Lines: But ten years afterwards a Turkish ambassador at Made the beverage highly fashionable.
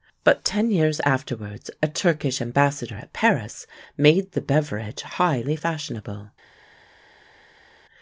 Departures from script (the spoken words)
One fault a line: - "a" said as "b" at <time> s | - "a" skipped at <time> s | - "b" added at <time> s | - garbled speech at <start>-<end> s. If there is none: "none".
- "Paris" added at 3.1 s